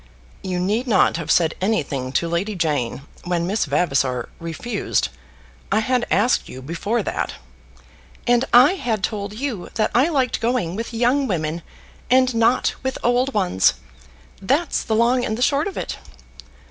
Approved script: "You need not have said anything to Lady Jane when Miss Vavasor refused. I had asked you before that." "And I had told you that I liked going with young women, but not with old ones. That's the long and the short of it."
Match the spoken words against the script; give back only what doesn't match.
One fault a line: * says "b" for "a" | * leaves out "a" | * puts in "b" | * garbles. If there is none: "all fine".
* says "and" for "but"